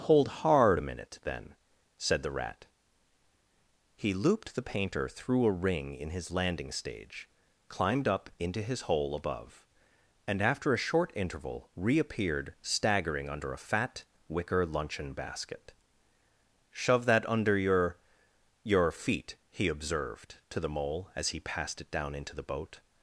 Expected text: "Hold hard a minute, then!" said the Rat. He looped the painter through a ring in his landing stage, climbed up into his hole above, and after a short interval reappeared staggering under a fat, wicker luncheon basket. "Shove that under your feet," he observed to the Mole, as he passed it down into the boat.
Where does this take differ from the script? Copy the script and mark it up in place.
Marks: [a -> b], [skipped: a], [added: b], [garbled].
"Hold hard a minute, then!" said the Rat. He looped the painter through a ring in his landing stage, climbed up into his hole above, and after a short interval reappeared staggering under a fat, wicker luncheon basket. "Shove that under your [added: your] feet," he observed to the Mole, as he passed it down into the boat.